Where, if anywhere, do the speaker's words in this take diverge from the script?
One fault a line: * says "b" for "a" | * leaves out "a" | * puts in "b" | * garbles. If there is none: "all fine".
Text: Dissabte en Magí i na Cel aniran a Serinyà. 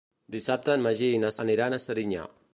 * leaves out "Cel"